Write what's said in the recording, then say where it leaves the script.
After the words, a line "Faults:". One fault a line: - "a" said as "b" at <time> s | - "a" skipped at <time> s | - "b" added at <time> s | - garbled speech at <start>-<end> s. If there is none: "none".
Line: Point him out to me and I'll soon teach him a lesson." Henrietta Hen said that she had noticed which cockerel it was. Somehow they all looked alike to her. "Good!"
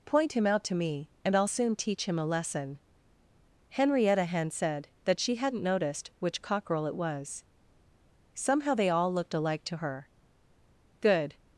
Point him out to me and I'll soon teach him a lesson." Henrietta Hen said that she hadn't noticed which cockerel it was. Somehow they all looked alike to her. "Good!"
Faults:
- "had" said as "hadn't" at 5.3 s